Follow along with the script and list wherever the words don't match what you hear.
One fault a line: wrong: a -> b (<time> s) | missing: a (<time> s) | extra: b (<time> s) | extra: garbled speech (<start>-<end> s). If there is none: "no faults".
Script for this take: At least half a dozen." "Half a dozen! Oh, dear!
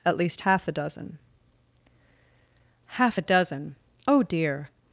wrong: a -> the (0.6 s)